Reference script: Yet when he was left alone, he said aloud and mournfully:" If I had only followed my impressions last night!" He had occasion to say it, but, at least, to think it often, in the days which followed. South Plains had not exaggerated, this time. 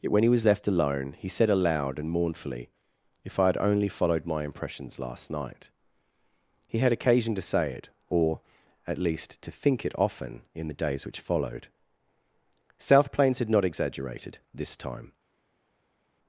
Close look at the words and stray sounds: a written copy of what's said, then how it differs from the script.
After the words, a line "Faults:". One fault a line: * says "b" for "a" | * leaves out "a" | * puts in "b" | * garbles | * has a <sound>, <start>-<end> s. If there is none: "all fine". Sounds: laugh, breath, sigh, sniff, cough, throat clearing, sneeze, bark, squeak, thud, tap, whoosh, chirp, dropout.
Yet when he was left alone, he said aloud and mournfully:" If I had only followed my impressions last night!" He had occasion to say it, or, at least, to think it often, in the days which followed. South Plains had not exaggerated, this time.
Faults:
* says "or" for "but"